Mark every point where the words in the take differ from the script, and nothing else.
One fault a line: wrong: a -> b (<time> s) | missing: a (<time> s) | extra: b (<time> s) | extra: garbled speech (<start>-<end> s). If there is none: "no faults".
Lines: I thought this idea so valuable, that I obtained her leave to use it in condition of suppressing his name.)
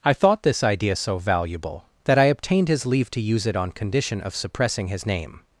wrong: her -> his (2.7 s)
wrong: in -> on (3.5 s)